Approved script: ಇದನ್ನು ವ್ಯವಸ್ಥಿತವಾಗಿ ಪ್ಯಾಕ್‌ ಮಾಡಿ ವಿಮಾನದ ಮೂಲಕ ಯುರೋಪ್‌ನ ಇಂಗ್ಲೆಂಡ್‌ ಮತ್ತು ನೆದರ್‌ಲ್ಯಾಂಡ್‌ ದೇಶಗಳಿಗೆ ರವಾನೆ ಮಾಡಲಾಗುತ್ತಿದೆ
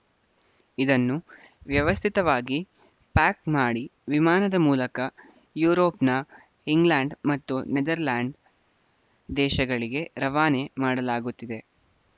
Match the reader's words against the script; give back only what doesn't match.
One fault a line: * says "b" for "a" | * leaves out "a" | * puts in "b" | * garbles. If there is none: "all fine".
all fine